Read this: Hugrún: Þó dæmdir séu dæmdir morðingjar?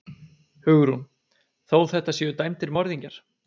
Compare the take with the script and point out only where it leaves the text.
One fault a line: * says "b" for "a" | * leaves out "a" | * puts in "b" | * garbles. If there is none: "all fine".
* says "þetta" for "dæmdir"